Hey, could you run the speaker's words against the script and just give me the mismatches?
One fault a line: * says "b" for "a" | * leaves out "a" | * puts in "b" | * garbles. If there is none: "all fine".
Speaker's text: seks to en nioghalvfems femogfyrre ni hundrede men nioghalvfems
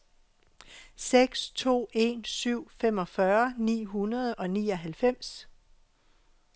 * says "syv" for "nioghalvfems"
* says "og" for "men"